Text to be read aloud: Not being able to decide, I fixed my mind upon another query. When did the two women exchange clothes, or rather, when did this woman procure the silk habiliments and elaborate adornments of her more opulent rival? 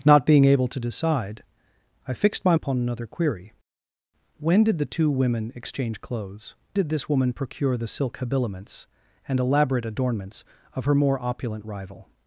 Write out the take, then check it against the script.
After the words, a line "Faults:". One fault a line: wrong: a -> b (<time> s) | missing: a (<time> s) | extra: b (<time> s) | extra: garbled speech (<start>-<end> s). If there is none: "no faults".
Not being able to decide, I fixed my upon another query. When did the two women exchange clothes, did this woman procure the silk habiliments and elaborate adornments of her more opulent rival?
Faults:
missing: mind (2.5 s)
missing: or rather when (6.6 s)